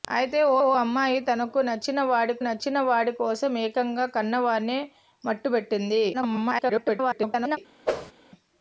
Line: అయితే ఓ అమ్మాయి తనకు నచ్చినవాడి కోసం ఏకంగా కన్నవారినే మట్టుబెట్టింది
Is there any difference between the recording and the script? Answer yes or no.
yes